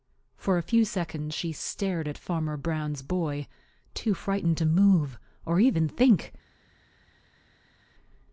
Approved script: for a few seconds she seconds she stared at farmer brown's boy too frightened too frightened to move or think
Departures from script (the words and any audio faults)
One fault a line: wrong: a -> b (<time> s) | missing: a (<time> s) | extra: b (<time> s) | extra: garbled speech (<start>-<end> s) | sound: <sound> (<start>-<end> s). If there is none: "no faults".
missing: seconds she (1.5 s)
missing: too frightened (4.6 s)
extra: even (5.6 s)